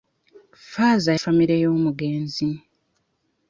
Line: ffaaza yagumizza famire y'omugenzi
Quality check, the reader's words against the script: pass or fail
fail